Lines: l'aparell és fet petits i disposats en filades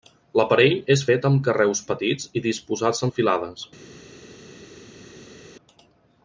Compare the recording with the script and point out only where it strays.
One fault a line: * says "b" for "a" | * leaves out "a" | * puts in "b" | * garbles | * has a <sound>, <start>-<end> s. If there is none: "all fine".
* puts in "amb carreus"